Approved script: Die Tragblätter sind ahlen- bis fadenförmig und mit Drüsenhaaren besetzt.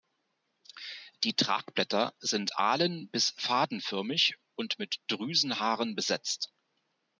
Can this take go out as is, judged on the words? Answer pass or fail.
pass